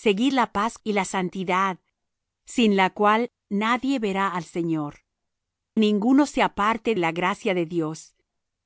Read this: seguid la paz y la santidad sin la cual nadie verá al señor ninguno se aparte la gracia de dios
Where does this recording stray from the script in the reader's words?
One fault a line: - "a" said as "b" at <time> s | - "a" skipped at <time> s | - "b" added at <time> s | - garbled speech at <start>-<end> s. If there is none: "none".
none